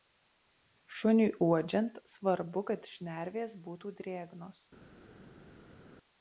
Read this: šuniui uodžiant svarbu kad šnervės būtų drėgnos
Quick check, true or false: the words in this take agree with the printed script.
true